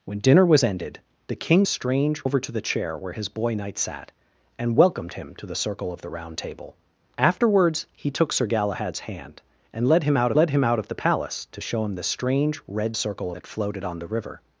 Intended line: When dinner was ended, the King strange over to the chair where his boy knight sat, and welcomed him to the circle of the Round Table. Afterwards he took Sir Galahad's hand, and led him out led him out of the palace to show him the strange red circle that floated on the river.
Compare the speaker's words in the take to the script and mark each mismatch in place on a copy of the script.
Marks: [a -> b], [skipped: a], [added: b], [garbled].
When dinner was ended, the King strange over to the chair where his boy knight sat, and welcomed him to the circle of the Round Table. Afterwards he took Sir Galahad's hand, and led him out led him out of the palace to show him the strange red circle that floated on the river.